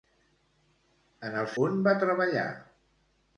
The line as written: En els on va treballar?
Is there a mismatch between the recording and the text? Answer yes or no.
no